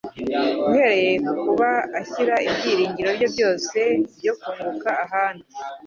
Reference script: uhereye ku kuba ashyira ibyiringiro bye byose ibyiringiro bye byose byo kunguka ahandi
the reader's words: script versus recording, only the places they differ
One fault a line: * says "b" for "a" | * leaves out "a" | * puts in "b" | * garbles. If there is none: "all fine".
* leaves out "ibyiringiro bye byose"